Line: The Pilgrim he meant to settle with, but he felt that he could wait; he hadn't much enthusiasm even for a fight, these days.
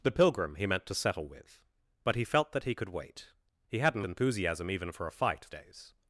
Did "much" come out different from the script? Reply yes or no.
yes